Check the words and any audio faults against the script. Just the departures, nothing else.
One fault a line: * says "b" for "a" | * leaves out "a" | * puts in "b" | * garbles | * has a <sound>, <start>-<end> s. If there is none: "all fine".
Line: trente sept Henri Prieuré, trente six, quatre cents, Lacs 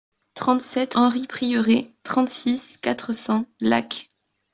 all fine